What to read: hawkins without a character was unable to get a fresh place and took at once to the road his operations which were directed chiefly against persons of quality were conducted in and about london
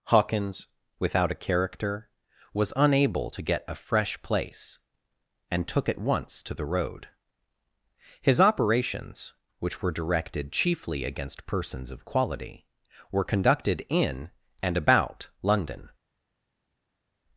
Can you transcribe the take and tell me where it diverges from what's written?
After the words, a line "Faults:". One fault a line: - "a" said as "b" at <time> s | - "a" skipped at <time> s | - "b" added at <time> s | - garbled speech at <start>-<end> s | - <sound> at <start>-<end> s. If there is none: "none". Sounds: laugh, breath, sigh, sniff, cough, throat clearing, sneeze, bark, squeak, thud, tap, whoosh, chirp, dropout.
hawkins without a character was unable to get a fresh place and took at once to the road his operations which were directed chiefly against persons of quality were conducted in and about london
Faults:
none